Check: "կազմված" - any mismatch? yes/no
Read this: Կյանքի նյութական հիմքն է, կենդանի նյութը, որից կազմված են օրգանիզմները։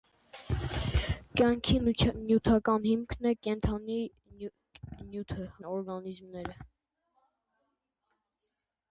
yes